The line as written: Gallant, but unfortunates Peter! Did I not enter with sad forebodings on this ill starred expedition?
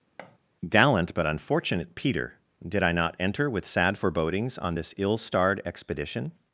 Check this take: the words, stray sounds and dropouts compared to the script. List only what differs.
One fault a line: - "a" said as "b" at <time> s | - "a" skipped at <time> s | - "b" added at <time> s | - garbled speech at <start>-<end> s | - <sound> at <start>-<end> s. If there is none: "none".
- thud at 0.2-0.4 s
- "unfortunates" said as "unfortunate" at 1.2 s